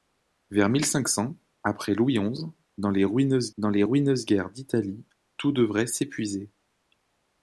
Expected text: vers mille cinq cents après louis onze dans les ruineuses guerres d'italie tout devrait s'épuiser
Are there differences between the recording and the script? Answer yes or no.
yes